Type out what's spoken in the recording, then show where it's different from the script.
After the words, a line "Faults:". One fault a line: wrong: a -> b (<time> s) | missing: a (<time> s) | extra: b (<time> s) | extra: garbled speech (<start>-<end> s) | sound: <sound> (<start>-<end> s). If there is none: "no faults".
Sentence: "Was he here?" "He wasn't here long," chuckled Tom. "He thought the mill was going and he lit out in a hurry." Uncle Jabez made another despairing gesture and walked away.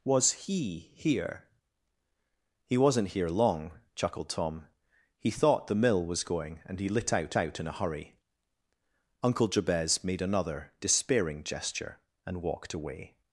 "Was he here?" "He wasn't here long," chuckled Tom. "He thought the mill was going and he lit out out in a hurry." Uncle Jabez made another despairing gesture and walked away.
Faults:
extra: out (7.4 s)